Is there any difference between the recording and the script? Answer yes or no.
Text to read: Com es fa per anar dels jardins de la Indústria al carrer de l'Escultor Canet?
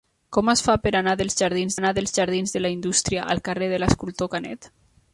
yes